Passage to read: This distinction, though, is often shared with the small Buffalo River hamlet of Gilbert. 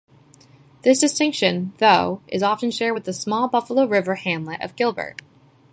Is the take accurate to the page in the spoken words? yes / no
yes